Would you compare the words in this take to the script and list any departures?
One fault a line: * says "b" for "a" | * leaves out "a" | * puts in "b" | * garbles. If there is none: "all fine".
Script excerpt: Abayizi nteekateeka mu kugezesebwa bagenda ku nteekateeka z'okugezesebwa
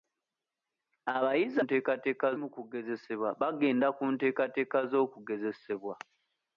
all fine